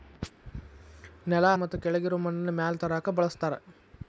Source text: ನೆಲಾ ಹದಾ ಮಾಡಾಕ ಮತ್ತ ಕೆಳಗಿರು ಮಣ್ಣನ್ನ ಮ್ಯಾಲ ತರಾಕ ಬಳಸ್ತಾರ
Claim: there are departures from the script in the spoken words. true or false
true